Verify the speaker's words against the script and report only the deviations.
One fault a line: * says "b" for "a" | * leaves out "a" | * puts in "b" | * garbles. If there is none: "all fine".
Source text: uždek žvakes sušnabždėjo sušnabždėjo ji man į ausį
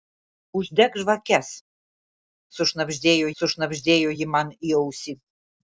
all fine